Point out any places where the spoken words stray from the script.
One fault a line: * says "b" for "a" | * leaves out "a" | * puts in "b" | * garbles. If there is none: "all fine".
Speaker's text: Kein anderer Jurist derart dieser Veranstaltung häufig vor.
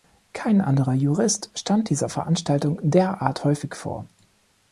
* says "stand" for "derart"
* puts in "derart"